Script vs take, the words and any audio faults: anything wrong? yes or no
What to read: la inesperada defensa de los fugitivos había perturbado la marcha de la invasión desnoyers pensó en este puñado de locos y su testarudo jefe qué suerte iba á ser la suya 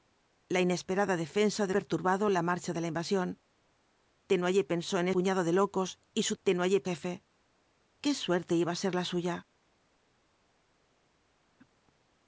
yes